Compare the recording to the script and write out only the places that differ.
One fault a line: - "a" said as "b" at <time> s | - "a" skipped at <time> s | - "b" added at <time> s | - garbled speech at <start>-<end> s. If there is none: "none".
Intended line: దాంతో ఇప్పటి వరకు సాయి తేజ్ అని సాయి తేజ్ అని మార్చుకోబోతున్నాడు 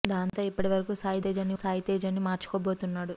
none